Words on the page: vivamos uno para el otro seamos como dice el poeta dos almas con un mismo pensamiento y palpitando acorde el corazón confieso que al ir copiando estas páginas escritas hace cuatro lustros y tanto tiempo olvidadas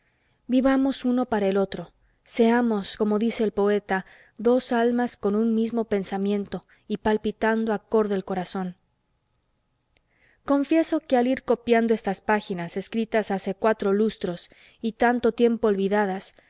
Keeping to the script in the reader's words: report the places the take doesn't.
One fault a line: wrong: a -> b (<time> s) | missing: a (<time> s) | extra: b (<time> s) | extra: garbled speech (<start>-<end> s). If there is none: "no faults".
no faults